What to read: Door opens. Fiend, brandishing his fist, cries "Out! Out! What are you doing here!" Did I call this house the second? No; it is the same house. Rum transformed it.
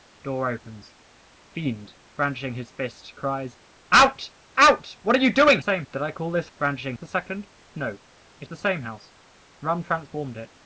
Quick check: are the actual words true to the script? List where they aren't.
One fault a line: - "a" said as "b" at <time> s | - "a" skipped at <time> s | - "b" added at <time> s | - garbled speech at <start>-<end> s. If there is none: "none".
- "here" said as "same" at 5.6 s
- "house" said as "brandishing" at 6.6 s
- "is" skipped at 8.5 s